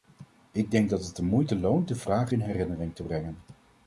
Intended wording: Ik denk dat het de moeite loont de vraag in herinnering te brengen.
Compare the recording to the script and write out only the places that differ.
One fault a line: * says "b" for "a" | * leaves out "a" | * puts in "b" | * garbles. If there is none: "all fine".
all fine